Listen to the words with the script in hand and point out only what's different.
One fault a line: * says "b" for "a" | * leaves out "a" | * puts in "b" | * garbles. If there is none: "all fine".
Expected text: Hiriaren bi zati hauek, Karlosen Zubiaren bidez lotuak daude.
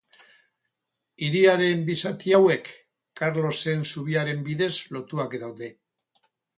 all fine